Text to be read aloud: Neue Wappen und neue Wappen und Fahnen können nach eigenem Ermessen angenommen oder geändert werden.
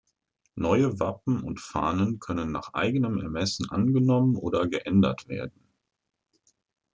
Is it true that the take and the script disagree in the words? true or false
true